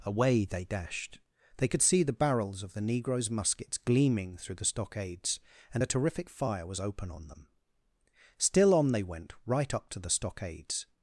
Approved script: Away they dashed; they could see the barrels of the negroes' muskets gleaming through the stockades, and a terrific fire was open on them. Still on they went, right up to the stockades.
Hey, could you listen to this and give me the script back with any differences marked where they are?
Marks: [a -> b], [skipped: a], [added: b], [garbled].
Away they dashed; they could see the barrels of the negroes' muskets gleaming through the stockades, and a terrific fire was open on them. Still on they went, right up to the stockades.